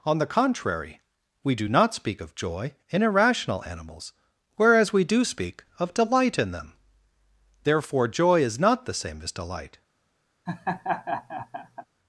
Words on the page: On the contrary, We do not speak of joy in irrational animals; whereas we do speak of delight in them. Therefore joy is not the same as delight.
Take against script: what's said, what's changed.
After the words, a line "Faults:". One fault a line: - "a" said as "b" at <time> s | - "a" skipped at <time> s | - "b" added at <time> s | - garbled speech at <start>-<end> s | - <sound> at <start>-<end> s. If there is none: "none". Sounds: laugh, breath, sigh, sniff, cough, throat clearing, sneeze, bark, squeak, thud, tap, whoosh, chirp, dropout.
On the contrary, We do not speak of joy in irrational animals; whereas we do speak of delight in them. Therefore joy is not the same as delight.
Faults:
- laugh at 10.5-11.9 s